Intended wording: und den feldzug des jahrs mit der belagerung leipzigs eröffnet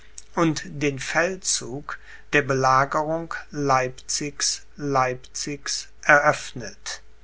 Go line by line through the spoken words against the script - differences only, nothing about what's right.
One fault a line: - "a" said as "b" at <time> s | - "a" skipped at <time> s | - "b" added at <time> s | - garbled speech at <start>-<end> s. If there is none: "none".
- "des jahrs mit" skipped at 2.0 s
- "leipzigs" added at 4.8 s